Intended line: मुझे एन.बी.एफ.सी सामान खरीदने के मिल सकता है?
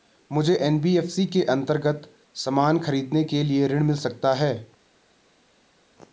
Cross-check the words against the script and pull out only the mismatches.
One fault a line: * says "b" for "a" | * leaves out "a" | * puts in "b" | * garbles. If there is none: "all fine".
* puts in "के अन्तर्गत"
* puts in "लिए ऋण"